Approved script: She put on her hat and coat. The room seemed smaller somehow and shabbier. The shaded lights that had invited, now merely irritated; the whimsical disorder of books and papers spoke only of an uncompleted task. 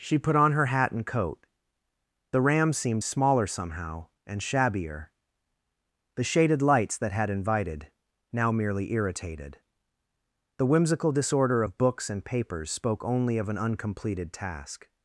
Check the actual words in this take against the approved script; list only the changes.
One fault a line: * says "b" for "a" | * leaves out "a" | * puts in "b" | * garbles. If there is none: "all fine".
* says "ram" for "room"